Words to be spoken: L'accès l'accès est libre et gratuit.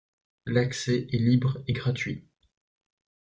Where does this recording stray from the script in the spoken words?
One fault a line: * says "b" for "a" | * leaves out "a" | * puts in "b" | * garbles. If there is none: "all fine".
* leaves out "l'accès"